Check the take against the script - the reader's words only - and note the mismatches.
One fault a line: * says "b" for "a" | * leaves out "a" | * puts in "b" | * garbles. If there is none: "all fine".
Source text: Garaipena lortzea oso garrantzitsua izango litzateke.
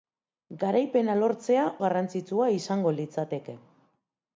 * leaves out "oso"